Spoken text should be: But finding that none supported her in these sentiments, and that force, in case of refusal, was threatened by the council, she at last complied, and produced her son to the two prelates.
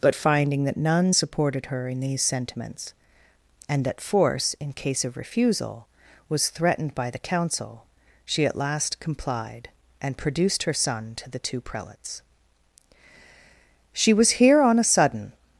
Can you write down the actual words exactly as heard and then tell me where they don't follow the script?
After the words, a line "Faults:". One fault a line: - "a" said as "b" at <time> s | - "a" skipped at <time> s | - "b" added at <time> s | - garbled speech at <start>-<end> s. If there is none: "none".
But finding that none supported her in these sentiments, and that force, in case of refusal, was threatened by the council, she at last complied, and produced her son to the two prelates. She was here on a sudden
Faults:
- "She was here on a sudden" added at 13.9 s